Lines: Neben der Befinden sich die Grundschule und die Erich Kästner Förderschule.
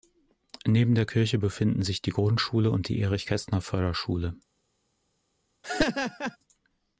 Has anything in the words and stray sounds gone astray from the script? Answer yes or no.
yes